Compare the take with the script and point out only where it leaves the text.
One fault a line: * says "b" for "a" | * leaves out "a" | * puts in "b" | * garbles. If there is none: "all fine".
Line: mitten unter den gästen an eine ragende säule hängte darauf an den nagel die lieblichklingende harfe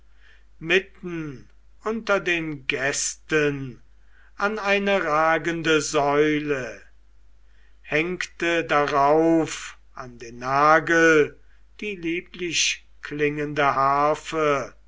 all fine